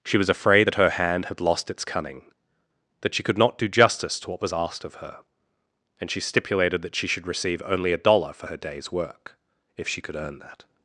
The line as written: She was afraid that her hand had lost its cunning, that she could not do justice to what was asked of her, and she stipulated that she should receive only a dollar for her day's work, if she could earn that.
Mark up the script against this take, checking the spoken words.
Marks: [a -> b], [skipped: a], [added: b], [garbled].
She was afraid that her hand had lost its cunning, that she could not do justice to what was asked of her, and she stipulated that she should receive only a dollar for her day's work, if she could earn that.